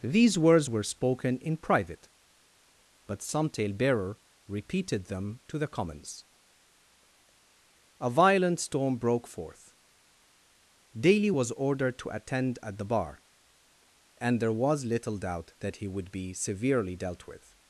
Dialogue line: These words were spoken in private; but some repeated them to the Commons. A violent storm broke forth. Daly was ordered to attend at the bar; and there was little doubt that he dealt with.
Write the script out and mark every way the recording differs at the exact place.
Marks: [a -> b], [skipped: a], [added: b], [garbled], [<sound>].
These words were spoken in private; but some [added: talebearer] repeated them to the Commons. A violent storm broke forth. Daly was ordered to attend at the bar; and there was little doubt that he [added: would be severely] dealt with.